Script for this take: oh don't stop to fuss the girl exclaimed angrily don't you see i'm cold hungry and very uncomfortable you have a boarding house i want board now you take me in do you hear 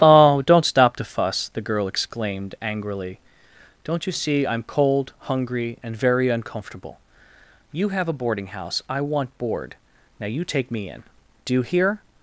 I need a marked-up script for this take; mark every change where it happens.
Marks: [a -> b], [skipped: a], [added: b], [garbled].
oh don't stop to fuss the girl exclaimed angrily don't you see i'm cold hungry and very uncomfortable you have a boarding house i want board now you take me in do you hear